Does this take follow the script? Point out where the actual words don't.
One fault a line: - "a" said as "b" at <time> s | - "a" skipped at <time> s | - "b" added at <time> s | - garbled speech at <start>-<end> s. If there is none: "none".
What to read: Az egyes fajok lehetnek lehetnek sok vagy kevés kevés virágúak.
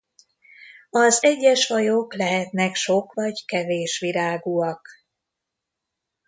- "lehetnek" skipped at 2.7 s
- "kevés" skipped at 4.0 s